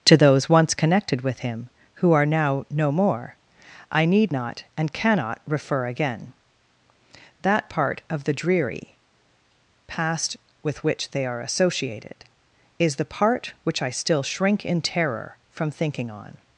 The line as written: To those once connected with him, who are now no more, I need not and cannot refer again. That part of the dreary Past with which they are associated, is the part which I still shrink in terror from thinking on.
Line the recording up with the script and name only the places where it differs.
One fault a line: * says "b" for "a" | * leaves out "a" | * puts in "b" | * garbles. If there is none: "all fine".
all fine